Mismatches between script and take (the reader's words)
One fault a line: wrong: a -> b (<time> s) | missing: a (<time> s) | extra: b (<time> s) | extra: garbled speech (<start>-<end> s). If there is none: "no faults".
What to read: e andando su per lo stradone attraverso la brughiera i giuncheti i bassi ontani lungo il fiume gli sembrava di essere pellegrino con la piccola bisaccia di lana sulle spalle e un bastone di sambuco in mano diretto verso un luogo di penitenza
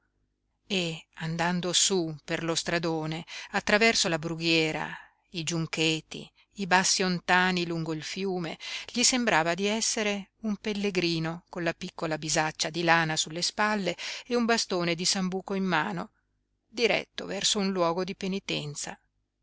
extra: un (10.4 s)